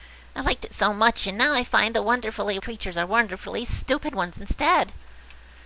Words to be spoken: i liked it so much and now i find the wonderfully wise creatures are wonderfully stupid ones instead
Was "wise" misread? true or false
true